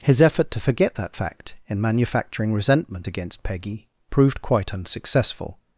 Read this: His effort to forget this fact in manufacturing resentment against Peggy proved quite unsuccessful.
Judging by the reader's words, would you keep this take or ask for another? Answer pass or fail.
fail